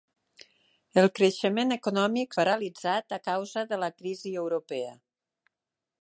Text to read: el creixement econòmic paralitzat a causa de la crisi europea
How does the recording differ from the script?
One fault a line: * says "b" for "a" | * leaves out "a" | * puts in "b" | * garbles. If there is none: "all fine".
all fine